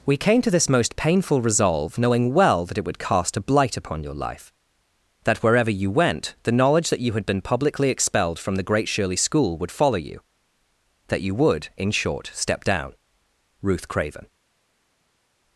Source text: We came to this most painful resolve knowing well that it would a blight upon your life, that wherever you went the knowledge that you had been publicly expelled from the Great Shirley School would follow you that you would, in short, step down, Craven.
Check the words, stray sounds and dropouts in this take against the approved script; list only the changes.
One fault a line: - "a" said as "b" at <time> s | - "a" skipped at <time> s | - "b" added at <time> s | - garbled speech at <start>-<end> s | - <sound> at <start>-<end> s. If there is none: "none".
- "cast" added at 3.0 s
- "Ruth" added at 13.6 s